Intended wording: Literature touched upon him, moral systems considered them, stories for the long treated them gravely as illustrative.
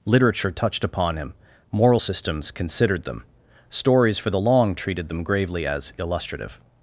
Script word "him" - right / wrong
right